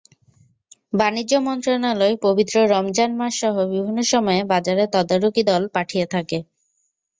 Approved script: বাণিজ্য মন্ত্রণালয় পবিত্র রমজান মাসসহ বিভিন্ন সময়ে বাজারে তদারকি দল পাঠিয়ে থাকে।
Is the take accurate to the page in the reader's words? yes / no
yes